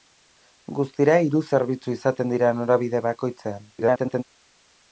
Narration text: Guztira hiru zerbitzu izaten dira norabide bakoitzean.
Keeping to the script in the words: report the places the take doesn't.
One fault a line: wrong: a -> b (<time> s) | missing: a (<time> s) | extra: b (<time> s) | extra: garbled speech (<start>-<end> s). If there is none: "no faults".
extra: garbled speech (3.8-4.2 s)